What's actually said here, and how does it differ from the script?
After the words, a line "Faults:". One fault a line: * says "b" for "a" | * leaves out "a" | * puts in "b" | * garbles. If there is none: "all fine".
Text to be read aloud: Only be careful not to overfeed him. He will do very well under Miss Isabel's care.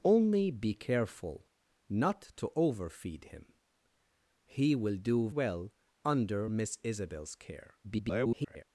Only be careful not to overfeed him. He will do well under Miss Isabel's care. [garbled]
Faults:
* leaves out "very"
* garbles